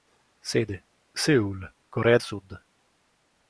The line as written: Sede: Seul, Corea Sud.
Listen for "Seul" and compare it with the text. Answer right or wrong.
right